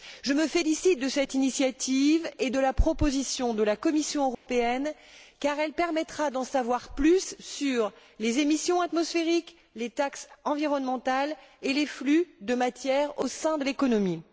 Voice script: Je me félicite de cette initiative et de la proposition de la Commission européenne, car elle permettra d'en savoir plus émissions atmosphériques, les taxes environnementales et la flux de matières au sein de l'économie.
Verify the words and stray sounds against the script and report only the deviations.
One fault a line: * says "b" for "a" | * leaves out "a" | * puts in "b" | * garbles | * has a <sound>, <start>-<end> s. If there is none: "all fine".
* has a dropout, 4.3-4.5 s
* puts in "sur les"
* says "les" for "la"